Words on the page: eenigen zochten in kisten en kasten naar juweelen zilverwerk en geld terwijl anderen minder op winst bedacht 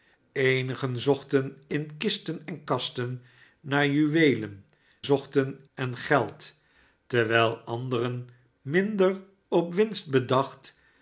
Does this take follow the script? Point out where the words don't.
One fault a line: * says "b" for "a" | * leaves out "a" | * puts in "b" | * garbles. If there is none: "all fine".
* says "zochten" for "zilverwerk"